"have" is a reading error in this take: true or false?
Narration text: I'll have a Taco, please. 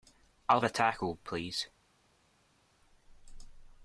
true